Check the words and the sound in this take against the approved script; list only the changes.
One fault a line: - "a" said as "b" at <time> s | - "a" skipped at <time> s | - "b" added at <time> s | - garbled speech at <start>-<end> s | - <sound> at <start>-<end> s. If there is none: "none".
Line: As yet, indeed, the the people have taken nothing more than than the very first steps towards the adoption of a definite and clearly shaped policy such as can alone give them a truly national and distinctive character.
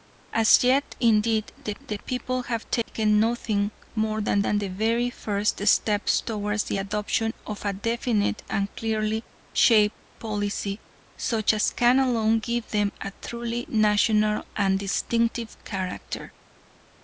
- dropout at 2.8-2.9 s